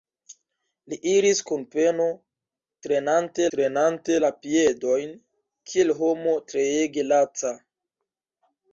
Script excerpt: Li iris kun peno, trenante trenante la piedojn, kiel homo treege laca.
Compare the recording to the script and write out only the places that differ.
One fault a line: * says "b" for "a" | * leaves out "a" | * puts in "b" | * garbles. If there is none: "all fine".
all fine